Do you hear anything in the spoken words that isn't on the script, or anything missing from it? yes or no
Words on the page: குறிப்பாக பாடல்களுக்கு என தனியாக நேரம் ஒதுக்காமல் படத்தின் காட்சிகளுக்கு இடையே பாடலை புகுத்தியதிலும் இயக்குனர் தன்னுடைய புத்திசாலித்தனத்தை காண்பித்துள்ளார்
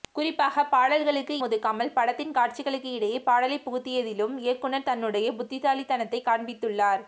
yes